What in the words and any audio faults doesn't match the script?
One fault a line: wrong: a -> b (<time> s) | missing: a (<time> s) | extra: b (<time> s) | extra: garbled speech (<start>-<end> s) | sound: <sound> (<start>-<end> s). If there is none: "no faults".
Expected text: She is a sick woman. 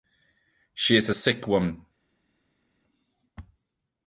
no faults